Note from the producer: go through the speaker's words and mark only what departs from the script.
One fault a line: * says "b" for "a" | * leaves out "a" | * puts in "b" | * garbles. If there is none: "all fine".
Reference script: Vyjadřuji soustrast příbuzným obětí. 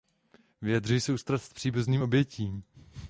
all fine